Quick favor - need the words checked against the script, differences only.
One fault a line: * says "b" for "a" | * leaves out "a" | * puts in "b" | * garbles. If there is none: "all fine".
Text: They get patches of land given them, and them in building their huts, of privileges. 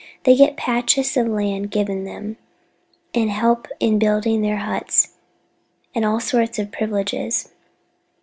* says "help" for "them"
* puts in "and all sorts"